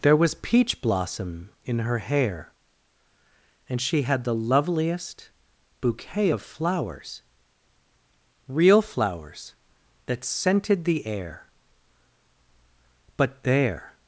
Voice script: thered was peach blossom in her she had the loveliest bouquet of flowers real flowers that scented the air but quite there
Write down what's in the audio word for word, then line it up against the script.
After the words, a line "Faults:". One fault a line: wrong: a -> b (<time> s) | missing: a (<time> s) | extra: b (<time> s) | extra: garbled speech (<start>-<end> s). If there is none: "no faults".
there was peach blossom in her hair and she had the loveliest bouquet of flowers real flowers that scented the air but there
Faults:
wrong: thered -> there (0.0 s)
extra: hair and (2.0 s)
missing: quite (13.4 s)